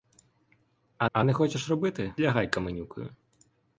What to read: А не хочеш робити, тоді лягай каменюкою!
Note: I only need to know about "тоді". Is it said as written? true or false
false